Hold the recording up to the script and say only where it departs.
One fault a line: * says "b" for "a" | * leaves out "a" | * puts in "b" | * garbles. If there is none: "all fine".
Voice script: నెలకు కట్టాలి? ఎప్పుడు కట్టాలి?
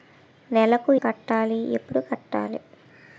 all fine